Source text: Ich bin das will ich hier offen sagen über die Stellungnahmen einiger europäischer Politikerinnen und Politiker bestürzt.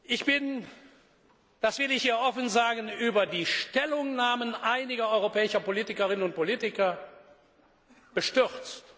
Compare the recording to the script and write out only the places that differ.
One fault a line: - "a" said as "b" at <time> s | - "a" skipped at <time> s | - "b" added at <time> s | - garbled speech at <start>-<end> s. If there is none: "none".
none